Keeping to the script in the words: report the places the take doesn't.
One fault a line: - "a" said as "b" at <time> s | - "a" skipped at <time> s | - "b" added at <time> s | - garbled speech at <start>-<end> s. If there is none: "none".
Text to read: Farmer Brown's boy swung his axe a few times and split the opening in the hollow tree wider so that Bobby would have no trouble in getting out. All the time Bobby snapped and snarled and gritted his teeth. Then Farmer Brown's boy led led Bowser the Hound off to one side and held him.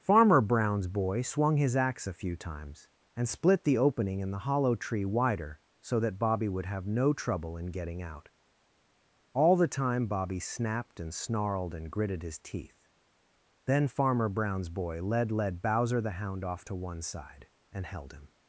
none